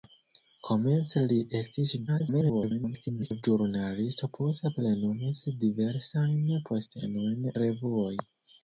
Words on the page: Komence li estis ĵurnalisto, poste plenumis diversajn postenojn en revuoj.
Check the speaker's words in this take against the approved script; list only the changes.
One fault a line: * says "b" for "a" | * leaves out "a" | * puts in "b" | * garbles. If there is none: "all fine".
* garbles
* leaves out "en"